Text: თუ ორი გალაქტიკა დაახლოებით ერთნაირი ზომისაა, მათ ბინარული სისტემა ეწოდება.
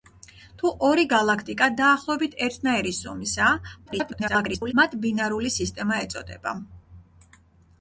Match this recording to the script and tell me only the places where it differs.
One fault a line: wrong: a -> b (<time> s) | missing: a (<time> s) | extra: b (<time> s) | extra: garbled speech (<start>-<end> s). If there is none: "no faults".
extra: garbled speech (3.9-4.7 s)